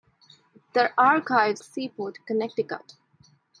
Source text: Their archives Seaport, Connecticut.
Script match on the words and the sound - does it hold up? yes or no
yes